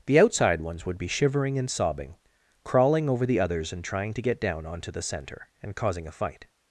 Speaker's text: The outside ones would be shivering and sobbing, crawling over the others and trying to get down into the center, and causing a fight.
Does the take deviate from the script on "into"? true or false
true